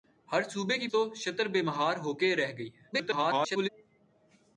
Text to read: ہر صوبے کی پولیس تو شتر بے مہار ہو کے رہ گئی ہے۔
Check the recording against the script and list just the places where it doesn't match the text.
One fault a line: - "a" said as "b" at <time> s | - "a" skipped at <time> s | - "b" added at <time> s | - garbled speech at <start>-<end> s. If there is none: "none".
- "پولیس" skipped at 0.9 s
- garbled speech at 2.9-3.7 s